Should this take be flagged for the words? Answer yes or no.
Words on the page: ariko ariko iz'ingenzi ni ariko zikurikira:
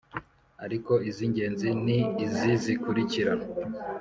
yes